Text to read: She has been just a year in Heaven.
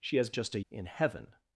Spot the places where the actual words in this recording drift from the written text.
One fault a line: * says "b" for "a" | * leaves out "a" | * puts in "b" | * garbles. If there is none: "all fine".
* leaves out "been"
* leaves out "year"